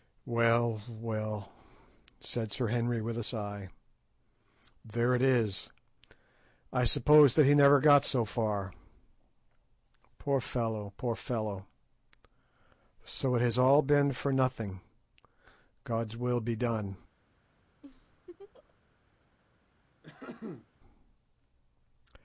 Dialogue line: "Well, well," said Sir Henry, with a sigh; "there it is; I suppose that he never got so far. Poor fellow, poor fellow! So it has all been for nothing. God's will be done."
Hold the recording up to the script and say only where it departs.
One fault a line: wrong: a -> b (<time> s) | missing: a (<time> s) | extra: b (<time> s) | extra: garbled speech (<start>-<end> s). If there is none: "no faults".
no faults